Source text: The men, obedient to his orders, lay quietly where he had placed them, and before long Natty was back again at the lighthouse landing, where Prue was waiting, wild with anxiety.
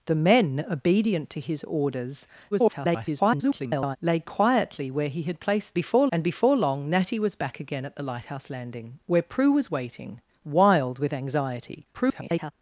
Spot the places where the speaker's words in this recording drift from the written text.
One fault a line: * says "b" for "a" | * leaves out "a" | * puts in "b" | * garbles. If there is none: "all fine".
* garbles
* says "before" for "them"
* garbles